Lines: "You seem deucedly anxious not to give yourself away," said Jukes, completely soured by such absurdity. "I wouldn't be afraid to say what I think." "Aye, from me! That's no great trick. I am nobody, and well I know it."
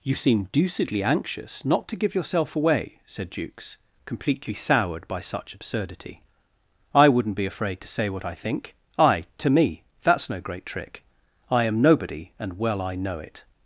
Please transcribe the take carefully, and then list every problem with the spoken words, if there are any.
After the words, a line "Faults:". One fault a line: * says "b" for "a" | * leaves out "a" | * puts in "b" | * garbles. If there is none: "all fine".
"You seem deucedly anxious not to give yourself away," said Jukes, completely soured by such absurdity. "I wouldn't be afraid to say what I think." "Aye, to me! That's no great trick. I am nobody, and well I know it."
Faults:
* says "to" for "from"